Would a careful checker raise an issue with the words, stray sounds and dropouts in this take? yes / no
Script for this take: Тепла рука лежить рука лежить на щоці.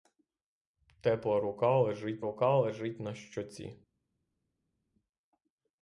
no